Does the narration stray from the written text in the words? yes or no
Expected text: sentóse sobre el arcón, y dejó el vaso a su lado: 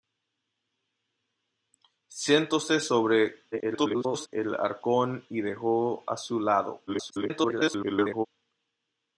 yes